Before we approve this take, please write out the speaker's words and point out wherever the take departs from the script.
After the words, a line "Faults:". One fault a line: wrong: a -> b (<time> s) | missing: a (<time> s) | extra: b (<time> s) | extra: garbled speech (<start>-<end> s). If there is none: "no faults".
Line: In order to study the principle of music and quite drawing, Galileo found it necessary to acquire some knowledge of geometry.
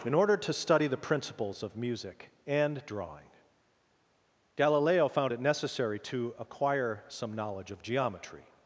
In order to study the principles of music and drawing, Galileo found it necessary to acquire some knowledge of geometry.
Faults:
wrong: principle -> principles (1.0 s)
missing: quite (2.8 s)